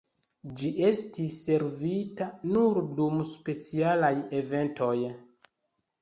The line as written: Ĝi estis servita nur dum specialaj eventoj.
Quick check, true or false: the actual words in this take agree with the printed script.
true